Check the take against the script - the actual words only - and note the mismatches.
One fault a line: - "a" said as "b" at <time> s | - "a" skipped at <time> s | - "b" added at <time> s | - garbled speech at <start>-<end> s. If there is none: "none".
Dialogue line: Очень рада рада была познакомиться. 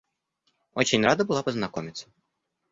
- "рада" skipped at 1.2 s